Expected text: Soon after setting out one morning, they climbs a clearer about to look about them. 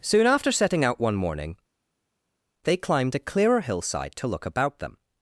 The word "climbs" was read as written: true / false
false